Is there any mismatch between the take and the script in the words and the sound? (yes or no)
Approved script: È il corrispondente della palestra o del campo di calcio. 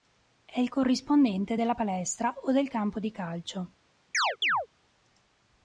yes